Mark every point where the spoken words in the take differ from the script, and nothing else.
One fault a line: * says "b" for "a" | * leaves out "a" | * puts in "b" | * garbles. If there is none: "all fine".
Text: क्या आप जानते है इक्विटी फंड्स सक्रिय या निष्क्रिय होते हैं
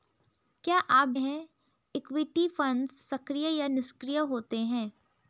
* leaves out "जानते"